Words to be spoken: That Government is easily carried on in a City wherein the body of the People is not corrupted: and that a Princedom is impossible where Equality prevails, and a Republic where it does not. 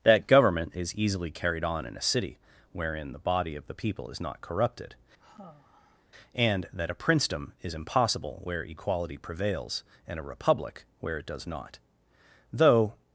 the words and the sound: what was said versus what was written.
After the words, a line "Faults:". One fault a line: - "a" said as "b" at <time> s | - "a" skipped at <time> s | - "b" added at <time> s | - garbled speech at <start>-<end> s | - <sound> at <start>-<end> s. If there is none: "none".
That Government is easily carried on in a City wherein the body of the People is not corrupted: and that a Princedom is impossible where Equality prevails, and a Republic where it does not. Though
Faults:
- sigh at 5.2-6.1 s
- "Though" added at 12.5 s